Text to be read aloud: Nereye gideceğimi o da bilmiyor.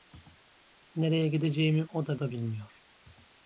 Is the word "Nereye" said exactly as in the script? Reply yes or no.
yes